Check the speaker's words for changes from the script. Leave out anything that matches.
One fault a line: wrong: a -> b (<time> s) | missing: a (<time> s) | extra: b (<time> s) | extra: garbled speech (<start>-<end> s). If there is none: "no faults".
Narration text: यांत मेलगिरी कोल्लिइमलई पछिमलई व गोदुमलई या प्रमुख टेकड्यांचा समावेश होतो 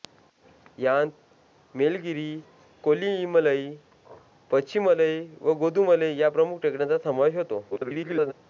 extra: garbled speech (7.7-8.3 s)